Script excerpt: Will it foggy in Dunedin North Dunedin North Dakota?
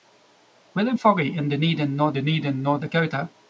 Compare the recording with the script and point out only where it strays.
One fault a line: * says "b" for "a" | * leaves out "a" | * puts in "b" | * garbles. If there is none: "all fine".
all fine